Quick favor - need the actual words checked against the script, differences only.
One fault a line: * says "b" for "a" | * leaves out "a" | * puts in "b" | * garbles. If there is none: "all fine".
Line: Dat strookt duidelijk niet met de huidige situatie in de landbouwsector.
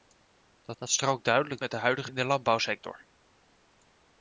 * puts in "dat"
* leaves out "niet"
* leaves out "situatie"